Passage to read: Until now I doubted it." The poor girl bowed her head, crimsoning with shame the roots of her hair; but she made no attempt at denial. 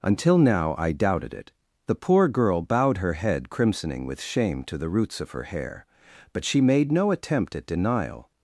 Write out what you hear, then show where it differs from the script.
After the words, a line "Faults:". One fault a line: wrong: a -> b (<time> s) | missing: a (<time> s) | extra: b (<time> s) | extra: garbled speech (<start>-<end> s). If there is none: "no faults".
Until now I doubted it." The poor girl bowed her head, crimsoning with shame to the roots of her hair; but she made no attempt at denial.
Faults:
extra: to (4.7 s)